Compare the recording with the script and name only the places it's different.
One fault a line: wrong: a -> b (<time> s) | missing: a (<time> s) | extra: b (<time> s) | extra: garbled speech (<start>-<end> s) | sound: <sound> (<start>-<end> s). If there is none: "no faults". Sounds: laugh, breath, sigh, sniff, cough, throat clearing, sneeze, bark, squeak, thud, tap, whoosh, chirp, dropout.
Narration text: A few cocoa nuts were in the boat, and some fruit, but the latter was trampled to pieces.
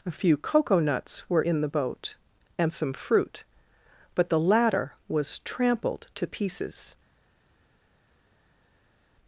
no faults